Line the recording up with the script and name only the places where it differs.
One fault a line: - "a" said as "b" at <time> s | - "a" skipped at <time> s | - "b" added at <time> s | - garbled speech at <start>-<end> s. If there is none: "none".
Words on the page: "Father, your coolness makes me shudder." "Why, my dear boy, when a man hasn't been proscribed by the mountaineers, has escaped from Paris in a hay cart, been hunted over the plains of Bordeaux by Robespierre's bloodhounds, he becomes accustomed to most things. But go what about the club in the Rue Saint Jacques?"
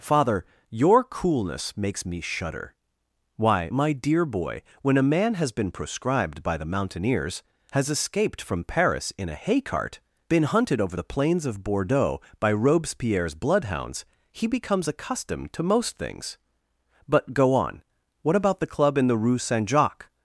- "hasn't" said as "has" at 5.3 s
- "on" added at 17.5 s